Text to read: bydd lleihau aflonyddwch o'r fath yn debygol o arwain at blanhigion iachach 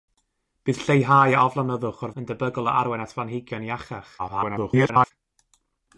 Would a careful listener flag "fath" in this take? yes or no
yes